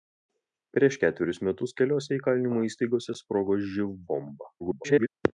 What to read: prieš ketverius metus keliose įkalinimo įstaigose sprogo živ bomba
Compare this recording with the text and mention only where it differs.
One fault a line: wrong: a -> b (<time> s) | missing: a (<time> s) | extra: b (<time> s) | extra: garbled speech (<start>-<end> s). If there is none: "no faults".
extra: garbled speech (4.6-5.1 s)